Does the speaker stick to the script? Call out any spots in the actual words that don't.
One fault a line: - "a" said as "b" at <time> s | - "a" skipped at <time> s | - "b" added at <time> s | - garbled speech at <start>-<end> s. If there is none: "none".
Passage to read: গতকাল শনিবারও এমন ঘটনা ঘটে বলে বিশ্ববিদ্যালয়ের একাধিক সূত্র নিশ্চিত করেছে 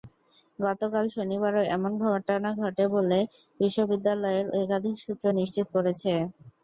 none